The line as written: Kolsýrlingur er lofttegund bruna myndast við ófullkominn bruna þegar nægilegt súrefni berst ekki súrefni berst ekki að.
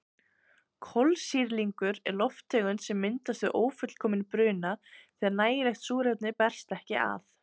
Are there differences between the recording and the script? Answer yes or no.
yes